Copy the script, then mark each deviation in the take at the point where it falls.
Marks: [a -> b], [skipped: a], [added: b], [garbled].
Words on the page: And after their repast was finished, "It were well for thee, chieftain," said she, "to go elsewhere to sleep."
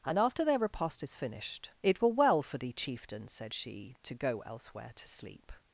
And after their repast [was -> is] finished, "It were well for thee, chieftain," said she, "to go elsewhere to sleep."